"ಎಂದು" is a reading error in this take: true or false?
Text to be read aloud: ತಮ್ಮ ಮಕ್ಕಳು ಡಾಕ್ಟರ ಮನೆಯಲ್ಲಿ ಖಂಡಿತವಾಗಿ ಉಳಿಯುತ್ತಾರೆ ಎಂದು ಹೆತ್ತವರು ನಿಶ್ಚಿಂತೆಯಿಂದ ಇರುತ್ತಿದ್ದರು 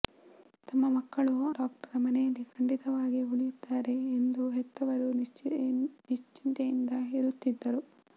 false